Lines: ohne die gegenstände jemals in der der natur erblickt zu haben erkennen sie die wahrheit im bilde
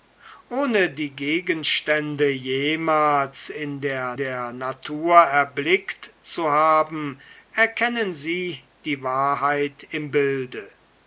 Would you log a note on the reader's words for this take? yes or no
no